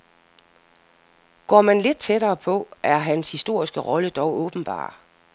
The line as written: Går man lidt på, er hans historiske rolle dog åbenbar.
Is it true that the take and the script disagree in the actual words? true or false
true